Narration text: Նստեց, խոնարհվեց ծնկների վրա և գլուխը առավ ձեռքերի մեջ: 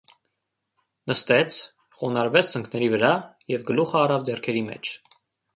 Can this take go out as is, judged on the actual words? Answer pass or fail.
pass